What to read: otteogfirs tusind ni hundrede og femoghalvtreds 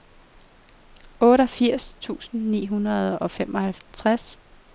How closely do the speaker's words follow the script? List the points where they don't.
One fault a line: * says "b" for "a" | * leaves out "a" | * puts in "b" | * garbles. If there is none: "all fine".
all fine